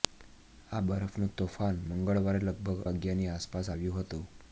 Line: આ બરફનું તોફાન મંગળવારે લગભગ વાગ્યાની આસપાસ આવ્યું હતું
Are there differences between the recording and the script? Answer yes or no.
no